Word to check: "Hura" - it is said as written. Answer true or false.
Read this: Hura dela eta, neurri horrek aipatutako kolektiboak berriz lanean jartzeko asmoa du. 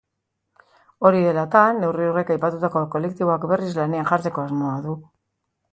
false